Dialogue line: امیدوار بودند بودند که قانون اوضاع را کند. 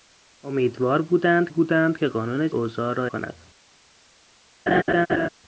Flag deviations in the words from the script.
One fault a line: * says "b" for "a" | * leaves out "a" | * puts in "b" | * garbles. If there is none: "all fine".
all fine